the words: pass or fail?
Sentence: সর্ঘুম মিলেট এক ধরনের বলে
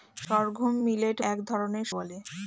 pass